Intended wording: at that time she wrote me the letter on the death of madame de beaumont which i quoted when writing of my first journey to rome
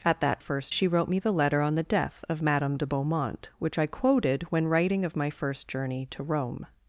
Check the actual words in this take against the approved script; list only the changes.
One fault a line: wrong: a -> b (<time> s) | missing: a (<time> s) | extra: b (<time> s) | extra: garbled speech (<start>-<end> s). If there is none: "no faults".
wrong: time -> first (0.4 s)